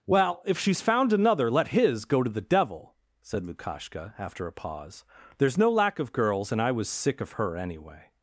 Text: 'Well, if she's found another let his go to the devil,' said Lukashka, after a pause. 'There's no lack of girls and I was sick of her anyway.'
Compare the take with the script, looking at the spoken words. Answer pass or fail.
pass